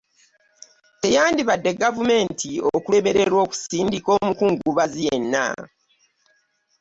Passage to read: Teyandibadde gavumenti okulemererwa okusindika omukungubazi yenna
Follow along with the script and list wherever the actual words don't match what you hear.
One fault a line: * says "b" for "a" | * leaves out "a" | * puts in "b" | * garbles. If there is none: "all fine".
all fine